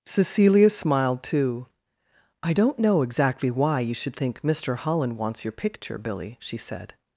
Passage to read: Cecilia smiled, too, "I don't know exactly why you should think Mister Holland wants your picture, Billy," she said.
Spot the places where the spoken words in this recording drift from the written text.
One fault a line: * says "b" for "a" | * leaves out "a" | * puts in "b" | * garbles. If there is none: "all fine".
all fine